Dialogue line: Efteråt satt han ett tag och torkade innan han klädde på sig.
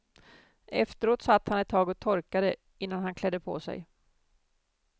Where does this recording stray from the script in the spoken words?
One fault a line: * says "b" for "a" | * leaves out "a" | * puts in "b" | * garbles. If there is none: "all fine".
all fine